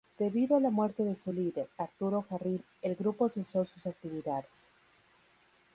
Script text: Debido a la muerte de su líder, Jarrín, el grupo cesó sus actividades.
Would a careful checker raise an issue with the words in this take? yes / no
yes